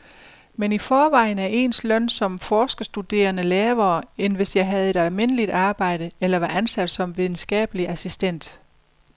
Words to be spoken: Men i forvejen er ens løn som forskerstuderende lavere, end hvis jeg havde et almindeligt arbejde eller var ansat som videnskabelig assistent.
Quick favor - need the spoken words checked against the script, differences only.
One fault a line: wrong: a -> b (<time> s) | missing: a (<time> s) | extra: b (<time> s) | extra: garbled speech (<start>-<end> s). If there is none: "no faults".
no faults